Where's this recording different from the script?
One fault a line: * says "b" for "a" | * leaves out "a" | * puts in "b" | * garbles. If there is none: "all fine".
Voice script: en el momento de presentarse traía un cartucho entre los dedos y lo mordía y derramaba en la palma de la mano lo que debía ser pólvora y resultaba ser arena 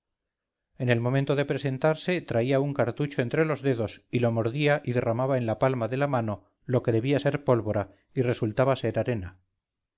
all fine